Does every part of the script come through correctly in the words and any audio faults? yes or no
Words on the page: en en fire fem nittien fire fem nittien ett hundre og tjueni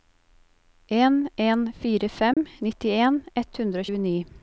no